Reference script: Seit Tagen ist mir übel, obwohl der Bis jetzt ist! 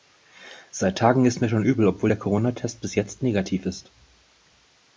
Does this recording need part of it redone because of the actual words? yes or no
yes